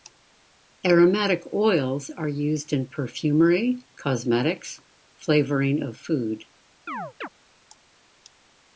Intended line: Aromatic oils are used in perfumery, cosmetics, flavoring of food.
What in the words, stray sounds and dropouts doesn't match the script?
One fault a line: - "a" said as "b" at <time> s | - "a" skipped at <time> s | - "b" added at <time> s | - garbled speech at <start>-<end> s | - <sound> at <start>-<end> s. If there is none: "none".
- chirp at 6.9-7.3 s